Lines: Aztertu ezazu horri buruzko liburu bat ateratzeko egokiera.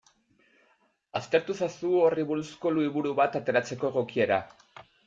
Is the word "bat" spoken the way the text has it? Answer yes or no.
yes